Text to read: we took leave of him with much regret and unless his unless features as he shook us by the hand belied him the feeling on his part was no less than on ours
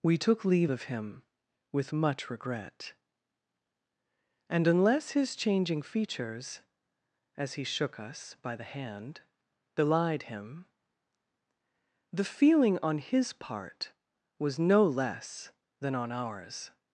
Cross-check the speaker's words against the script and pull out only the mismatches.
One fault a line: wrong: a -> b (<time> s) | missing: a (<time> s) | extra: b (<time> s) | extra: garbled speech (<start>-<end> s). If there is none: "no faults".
wrong: unless -> changing (5.3 s)